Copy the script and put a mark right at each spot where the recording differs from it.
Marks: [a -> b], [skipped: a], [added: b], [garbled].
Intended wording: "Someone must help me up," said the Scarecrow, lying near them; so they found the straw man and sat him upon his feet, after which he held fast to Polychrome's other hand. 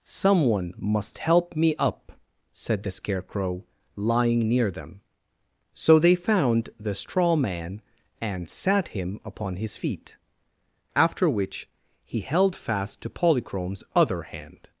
"Someone must help me up," said the Scarecrow, lying near them; so they found the straw man and sat him upon his feet, after which he held fast to Polychrome's other hand.